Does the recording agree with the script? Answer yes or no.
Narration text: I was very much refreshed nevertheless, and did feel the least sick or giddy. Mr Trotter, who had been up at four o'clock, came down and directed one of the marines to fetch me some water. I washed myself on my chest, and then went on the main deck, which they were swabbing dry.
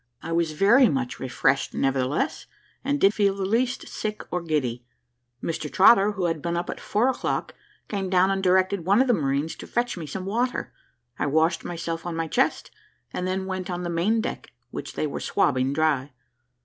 yes